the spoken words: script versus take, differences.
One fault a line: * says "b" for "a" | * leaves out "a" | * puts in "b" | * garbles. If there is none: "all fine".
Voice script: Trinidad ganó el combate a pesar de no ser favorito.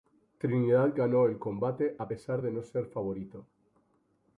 all fine